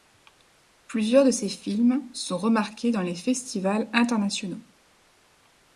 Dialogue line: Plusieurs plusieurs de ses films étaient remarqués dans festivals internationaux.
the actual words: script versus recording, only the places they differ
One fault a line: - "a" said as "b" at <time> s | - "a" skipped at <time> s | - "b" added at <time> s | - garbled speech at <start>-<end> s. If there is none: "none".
- "plusieurs" skipped at 1.2 s
- "étaient" said as "sont" at 2.1 s
- "les" added at 3.0 s